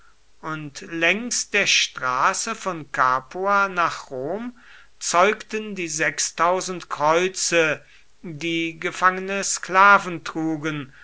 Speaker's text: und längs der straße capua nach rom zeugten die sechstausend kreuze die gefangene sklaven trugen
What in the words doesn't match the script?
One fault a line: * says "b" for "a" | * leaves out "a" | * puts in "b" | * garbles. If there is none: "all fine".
* puts in "von"